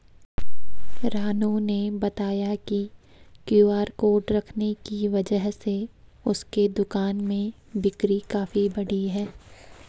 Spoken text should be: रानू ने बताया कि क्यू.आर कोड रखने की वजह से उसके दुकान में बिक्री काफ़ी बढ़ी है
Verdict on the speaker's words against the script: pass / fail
pass